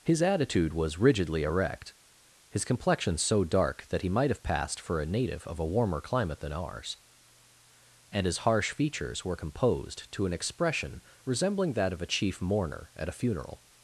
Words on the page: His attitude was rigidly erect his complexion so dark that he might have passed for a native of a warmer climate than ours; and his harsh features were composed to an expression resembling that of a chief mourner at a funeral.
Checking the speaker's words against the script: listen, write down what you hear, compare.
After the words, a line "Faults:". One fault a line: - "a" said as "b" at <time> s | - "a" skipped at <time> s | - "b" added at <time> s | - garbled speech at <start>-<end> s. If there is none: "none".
His attitude was rigidly erect his complexion so dark that he might have passed for a native of a warmer climate than ours; and his harsh features were composed to an expression resembling that of a chief mourner at a funeral.
Faults:
none